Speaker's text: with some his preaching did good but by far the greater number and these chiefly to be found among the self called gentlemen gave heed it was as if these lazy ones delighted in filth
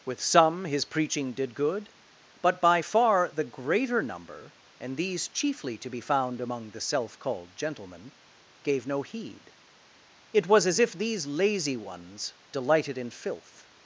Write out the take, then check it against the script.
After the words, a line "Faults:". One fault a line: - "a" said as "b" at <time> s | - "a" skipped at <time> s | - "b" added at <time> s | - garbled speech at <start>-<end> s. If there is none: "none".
with some his preaching did good but by far the greater number and these chiefly to be found among the self called gentlemen gave no heed it was as if these lazy ones delighted in filth
Faults:
- "no" added at 8.9 s